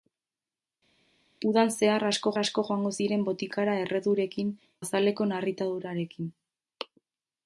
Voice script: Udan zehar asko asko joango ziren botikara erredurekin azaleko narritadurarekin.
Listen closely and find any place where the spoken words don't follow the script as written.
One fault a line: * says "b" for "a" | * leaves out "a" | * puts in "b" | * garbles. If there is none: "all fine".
all fine